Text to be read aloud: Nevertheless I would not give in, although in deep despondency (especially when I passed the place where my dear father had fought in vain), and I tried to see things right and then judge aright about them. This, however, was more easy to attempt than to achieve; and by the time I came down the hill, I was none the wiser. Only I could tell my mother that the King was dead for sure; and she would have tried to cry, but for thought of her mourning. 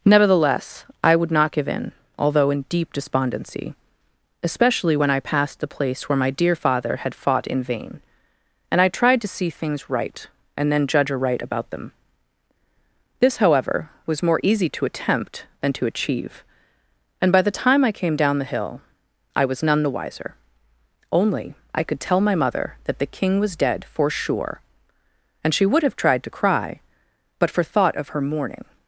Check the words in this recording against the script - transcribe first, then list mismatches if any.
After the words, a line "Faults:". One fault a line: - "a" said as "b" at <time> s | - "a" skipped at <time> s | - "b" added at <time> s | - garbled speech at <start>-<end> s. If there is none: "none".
Nevertheless I would not give in, although in deep despondency (especially when I passed the place where my dear father had fought in vain), and I tried to see things right and then judge aright about them. This, however, was more easy to attempt than to achieve; and by the time I came down the hill, I was none the wiser. Only I could tell my mother that the King was dead for sure; and she would have tried to cry, but for thought of her mourning.
Faults:
none